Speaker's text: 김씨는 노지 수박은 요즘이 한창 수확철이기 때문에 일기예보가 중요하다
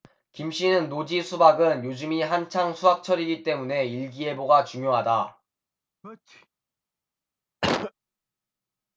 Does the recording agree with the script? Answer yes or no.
yes